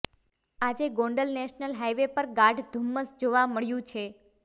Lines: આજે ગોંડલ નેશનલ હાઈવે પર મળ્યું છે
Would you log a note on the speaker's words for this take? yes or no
yes